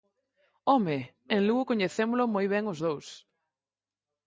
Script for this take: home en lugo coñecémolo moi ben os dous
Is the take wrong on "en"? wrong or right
right